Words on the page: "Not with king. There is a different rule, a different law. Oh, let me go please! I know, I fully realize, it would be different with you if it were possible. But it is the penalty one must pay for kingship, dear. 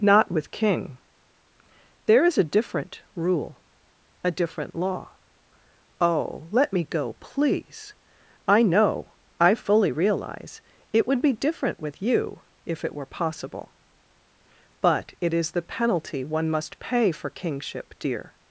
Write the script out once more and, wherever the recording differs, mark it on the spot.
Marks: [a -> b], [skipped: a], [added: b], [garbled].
"Not with king. There is a different rule, a different law. Oh, let me go please! I know, I fully realize, it would be different with you if it were possible. But it is the penalty one must pay for kingship, dear.